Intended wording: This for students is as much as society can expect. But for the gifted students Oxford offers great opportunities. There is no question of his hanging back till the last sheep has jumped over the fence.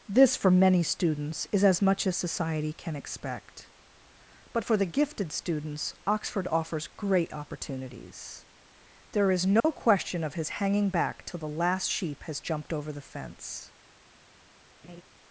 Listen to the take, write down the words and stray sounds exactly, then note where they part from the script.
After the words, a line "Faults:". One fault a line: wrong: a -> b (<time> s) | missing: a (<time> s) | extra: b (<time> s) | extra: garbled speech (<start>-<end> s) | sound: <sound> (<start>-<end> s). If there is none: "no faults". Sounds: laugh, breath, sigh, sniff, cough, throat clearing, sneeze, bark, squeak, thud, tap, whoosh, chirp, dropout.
This for many students is as much as society can expect. But for the gifted students Oxford offers great opportunities. There is no question of his hanging back till the last sheep has jumped over the fence.
Faults:
extra: many (0.5 s)
sound: dropout (9.6-9.6 s)
sound: laugh (14.8-15.0 s)